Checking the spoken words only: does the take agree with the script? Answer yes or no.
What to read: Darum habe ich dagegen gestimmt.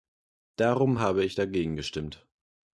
yes